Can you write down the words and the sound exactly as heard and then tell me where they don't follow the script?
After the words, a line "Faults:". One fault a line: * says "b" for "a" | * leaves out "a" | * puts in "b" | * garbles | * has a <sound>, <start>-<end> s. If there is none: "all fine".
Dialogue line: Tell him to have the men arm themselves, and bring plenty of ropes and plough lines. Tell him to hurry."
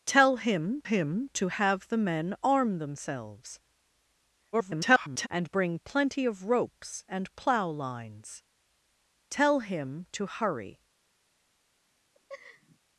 Tell him him to have the men arm themselves, [garbled] and bring plenty of ropes and plough lines. Tell him to hurry."
Faults:
* puts in "him"
* garbles
* has a laugh, 12.1-12.8 s